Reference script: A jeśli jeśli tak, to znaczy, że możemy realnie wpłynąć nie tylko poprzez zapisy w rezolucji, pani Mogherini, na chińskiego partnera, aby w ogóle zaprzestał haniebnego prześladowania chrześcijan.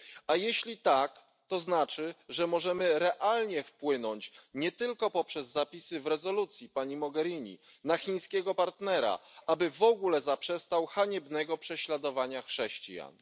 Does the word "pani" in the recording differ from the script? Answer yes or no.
no